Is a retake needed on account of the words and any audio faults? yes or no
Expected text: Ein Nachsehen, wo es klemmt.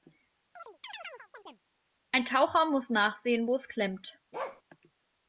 yes